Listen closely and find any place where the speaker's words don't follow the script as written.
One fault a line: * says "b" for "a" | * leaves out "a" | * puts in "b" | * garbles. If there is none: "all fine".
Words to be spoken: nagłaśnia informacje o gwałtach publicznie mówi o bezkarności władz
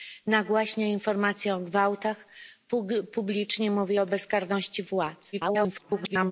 * garbles